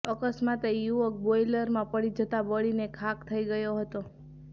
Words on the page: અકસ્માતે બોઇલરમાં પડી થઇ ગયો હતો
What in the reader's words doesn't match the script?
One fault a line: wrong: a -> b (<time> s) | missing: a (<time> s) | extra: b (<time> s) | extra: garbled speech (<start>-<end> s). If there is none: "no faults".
extra: યુવક (0.8 s)
extra: જતા બળીને ખાખ (2.2 s)